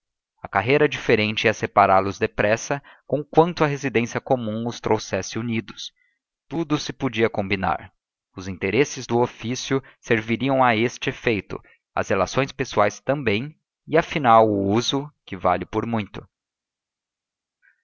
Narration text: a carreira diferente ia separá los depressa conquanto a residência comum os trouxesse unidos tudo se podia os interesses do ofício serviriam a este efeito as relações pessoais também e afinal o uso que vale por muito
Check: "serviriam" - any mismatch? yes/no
no